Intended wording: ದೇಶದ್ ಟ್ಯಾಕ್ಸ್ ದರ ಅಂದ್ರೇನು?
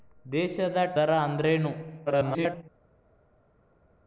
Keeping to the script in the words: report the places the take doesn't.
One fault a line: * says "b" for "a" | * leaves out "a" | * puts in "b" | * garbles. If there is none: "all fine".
* leaves out "ಟ್ಯಾಕ್ಸ್"
* garbles